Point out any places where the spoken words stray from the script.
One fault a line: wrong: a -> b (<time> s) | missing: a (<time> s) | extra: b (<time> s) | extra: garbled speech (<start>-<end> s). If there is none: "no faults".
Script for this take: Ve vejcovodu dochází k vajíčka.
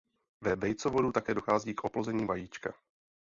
extra: také (1.1 s)
extra: oplození (1.8 s)